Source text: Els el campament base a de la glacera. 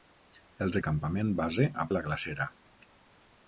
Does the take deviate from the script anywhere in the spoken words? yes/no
no